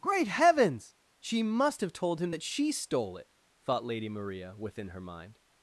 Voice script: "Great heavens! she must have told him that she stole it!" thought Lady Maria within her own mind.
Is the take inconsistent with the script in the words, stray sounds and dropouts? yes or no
yes